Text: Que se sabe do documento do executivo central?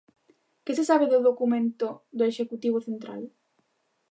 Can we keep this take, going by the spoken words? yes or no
yes